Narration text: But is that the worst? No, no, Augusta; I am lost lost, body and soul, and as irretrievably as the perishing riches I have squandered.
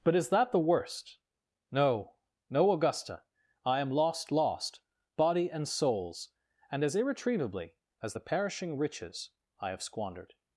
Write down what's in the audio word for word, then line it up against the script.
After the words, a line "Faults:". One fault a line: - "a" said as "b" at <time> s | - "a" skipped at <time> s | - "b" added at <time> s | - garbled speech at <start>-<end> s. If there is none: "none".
But is that the worst? No, no, Augusta; I am lost lost, body and souls, and as irretrievably as the perishing riches I have squandered.
Faults:
- "soul" said as "souls" at 5.7 s